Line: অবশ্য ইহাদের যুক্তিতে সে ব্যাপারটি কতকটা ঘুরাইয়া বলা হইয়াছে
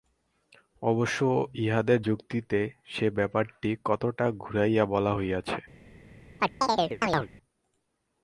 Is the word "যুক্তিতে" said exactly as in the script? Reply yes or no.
yes